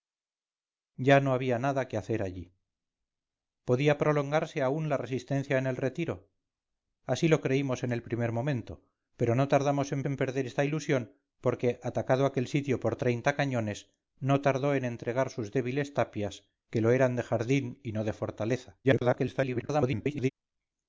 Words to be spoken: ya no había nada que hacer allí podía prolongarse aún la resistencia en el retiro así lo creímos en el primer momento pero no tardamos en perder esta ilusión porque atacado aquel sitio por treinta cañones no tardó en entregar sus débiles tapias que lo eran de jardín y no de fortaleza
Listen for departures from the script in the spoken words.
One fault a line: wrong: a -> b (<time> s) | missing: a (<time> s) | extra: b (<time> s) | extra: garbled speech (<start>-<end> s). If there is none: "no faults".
extra: en (10.0 s)
extra: garbled speech (18.8-20.3 s)